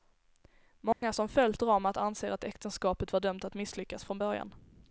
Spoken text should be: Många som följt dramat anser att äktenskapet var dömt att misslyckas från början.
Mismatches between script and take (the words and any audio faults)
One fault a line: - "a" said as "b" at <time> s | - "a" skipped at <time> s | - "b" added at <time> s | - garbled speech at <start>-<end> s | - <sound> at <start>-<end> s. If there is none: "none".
- dropout at 0.9-1.0 s